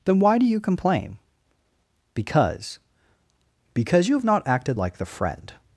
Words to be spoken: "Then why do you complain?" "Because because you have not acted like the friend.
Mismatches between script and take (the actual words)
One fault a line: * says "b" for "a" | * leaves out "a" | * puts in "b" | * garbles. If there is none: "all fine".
all fine